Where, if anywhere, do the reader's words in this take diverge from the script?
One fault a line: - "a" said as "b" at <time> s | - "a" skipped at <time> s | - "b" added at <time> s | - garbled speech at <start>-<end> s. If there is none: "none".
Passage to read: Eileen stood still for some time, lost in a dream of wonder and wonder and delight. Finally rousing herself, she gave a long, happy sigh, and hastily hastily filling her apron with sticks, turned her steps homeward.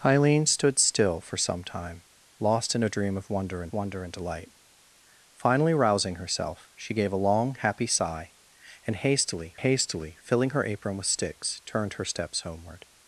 none